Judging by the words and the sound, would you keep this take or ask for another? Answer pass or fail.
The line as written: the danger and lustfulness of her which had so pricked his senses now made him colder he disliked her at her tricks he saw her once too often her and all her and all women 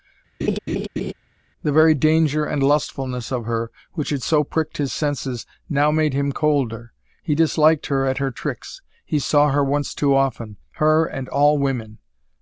fail